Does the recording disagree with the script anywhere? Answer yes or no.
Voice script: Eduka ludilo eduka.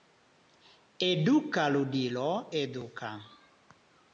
no